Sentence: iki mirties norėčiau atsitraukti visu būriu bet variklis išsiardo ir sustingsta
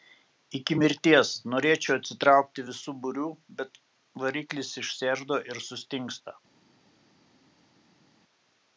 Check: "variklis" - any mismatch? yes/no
no